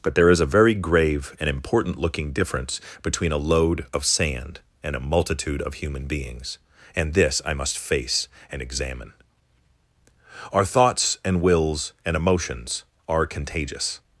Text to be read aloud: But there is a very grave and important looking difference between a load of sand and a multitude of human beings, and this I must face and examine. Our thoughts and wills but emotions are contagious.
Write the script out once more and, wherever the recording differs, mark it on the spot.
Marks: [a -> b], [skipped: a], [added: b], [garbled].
But there is a very grave and important looking difference between a load of sand and a multitude of human beings, and this I must face and examine. Our thoughts and wills [but -> and] emotions are contagious.